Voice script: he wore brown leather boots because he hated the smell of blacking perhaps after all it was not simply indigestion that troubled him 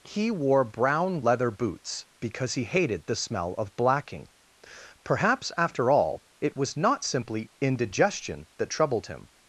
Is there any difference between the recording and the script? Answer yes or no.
no